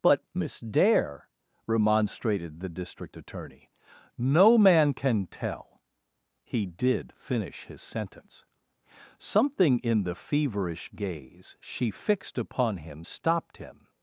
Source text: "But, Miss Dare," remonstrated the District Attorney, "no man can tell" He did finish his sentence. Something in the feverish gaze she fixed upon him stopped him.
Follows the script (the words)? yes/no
yes